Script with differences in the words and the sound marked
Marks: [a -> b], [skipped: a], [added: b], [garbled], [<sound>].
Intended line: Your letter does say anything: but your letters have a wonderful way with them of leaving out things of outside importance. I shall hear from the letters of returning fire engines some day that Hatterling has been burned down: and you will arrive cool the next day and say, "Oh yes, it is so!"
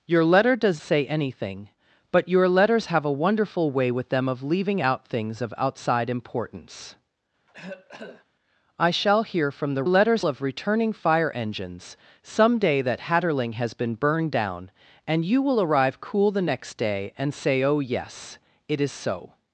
Your letter does say anything: but your letters have a wonderful way with them of leaving out things of outside importance. [cough] I shall hear from the letters of returning fire engines some day that Hatterling has been burned down: and you will arrive cool the next day and say, "Oh yes, it is so!"